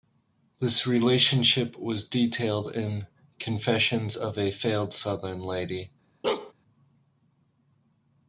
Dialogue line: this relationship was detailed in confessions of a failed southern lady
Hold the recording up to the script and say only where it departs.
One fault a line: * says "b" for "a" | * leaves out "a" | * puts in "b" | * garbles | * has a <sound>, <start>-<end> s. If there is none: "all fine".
* has a bark, 6.2-6.5 s